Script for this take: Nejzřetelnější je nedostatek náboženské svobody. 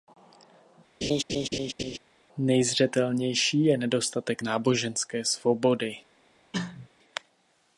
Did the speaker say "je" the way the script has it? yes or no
yes